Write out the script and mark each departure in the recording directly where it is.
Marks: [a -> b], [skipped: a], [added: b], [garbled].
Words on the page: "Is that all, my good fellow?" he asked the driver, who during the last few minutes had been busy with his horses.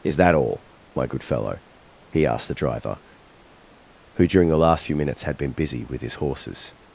"Is that all, my good fellow?" he asked the driver, who during the last few minutes had been busy with his horses.